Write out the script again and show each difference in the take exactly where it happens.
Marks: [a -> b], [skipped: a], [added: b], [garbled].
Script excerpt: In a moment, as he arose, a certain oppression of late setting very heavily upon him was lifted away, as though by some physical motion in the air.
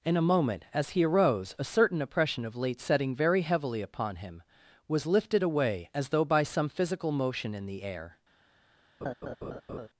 In a moment, as he arose, a certain oppression of late setting very heavily upon him was lifted away, as though by some physical motion in the air.